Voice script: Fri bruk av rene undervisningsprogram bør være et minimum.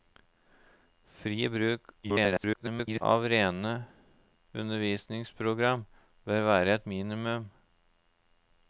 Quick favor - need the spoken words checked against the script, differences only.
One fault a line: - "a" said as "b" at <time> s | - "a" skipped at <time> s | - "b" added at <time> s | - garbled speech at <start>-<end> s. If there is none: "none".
- garbled speech at 2.0-3.0 s